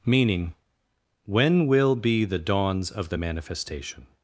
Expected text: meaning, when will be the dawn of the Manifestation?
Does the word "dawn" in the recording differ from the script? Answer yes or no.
yes